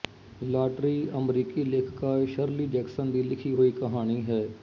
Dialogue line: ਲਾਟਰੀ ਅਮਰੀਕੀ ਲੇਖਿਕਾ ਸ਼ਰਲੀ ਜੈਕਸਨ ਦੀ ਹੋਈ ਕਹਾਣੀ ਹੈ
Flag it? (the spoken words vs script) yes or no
yes